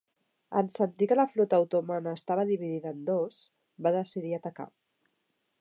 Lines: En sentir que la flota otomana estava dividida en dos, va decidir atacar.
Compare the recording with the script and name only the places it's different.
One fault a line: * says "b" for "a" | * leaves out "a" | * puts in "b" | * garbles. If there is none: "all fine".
all fine